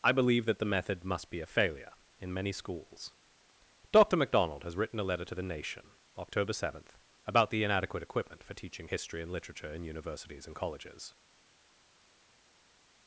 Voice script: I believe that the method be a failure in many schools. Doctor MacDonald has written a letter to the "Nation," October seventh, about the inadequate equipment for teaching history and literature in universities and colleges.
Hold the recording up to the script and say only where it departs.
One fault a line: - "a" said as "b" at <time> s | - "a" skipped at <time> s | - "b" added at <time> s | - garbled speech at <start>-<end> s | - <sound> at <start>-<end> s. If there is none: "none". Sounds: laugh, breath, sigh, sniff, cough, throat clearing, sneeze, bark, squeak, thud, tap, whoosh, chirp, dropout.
- "must" added at 1.0 s